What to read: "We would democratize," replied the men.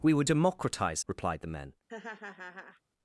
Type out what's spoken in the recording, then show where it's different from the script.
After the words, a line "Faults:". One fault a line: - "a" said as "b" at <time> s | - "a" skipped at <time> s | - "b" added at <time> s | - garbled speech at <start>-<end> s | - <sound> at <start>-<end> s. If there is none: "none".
"We would democratize," replied the men.
Faults:
- laugh at 1.9-2.8 s